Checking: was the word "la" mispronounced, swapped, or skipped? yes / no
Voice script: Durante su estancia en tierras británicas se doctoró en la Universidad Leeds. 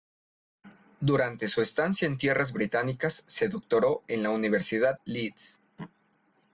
no